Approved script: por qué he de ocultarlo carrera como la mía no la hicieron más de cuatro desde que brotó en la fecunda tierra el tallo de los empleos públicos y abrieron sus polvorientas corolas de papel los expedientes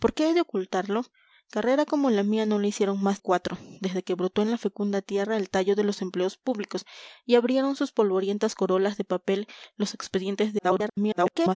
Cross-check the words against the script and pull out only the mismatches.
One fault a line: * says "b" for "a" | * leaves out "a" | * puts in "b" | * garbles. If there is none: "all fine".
* leaves out "de"
* garbles